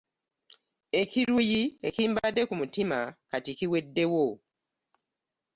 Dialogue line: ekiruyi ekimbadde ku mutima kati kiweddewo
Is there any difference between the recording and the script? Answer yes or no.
no